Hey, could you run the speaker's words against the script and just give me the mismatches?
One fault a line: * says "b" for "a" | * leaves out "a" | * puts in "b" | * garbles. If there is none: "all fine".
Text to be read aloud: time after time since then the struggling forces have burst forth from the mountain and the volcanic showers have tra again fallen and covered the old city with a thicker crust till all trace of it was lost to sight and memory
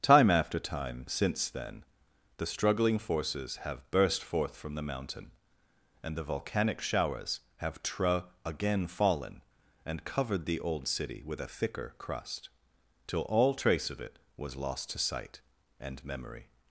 all fine